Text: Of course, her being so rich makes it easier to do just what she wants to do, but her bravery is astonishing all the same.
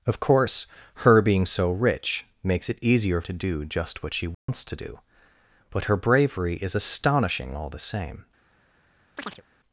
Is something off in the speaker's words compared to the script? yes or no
no